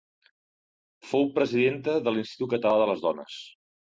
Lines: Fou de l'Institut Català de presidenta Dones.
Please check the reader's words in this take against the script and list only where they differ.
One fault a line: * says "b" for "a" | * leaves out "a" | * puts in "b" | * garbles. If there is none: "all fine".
* puts in "presidenta"
* says "les" for "presidenta"